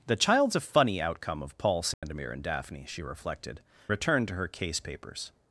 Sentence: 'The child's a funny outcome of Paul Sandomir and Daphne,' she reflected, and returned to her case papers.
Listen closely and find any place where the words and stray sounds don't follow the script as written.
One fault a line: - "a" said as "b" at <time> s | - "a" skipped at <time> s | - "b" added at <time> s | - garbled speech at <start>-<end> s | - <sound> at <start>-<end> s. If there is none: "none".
- dropout at 1.9-2.0 s
- "and" skipped at 3.6 s